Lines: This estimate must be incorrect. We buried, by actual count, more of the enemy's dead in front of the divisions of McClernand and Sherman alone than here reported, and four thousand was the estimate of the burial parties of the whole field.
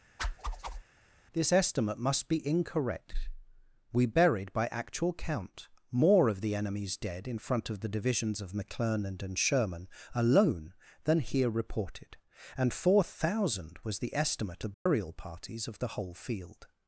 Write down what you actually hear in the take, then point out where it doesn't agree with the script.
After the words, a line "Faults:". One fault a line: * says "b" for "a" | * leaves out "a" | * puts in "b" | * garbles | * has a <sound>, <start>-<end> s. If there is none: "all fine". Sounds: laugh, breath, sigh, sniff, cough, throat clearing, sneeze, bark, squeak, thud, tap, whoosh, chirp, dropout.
This estimate must be incorrect. We buried, by actual count, more of the enemy's dead in front of the divisions of McClernand and Sherman alone than here reported, and four thousand was the estimate the burial parties of the whole field.
Faults:
* has a whoosh, 0.2-0.8 s
* leaves out "of"
* has a dropout, 14.7-14.9 s